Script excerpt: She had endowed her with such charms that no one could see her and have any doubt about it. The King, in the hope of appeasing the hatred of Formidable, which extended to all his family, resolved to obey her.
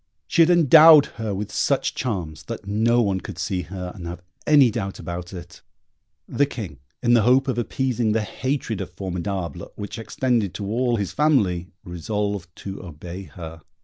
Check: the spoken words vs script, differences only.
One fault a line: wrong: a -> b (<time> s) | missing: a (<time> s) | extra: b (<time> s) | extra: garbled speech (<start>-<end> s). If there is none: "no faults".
no faults